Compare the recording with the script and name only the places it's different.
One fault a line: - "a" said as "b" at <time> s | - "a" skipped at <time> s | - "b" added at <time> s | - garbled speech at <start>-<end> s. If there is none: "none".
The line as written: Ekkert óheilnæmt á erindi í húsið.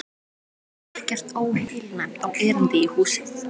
none